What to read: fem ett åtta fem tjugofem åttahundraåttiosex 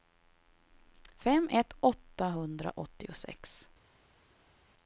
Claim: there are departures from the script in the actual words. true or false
true